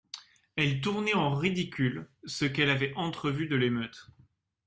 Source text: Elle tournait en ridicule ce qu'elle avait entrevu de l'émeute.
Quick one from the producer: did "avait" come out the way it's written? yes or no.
yes